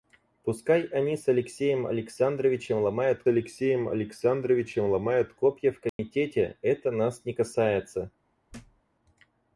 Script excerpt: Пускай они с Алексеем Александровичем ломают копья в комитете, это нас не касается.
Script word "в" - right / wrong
right